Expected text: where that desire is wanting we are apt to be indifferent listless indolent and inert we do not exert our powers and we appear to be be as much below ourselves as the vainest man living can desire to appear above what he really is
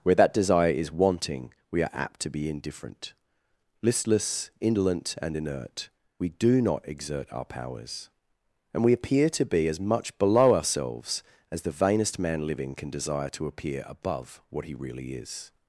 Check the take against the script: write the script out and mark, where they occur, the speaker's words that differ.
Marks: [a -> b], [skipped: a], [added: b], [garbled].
where that desire is wanting we are apt to be indifferent listless indolent and inert we do not exert our powers and we appear to be [skipped: be] as much below ourselves as the vainest man living can desire to appear above what he really is